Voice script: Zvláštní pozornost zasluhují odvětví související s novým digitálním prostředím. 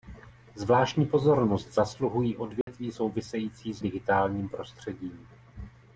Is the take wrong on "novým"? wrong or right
wrong